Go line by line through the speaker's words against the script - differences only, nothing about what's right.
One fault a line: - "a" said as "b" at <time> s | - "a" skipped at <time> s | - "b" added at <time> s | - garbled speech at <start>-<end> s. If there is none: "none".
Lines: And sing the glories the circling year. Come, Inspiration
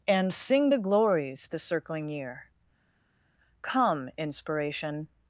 none